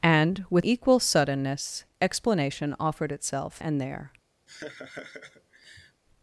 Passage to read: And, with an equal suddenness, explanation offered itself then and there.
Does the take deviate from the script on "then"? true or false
true